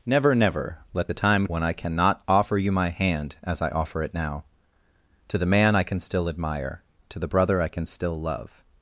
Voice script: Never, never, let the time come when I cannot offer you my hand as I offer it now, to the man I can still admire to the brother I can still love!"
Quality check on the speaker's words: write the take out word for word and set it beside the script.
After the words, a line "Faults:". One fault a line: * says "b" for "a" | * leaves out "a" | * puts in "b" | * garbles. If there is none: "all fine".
Never, never, let the time when I cannot offer you my hand as I offer it now, to the man I can still admire to the brother I can still love!"
Faults:
* leaves out "come"